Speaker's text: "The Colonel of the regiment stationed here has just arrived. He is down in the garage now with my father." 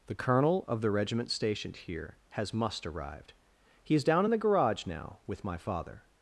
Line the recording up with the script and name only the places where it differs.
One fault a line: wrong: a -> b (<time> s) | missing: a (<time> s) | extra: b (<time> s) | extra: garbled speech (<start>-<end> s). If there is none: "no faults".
wrong: just -> must (2.5 s)